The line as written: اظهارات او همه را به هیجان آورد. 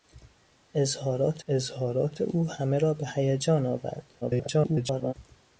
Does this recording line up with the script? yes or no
no